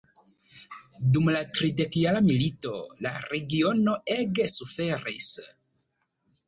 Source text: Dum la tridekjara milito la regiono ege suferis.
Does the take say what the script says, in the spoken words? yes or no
yes